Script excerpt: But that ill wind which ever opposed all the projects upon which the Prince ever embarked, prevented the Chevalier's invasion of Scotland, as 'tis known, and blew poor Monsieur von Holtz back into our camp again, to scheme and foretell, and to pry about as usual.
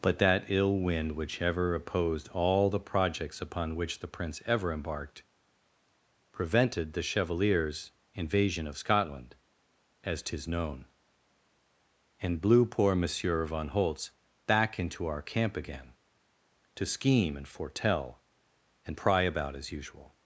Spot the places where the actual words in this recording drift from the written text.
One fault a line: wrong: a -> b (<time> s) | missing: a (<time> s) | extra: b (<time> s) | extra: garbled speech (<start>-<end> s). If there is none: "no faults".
missing: to (19.0 s)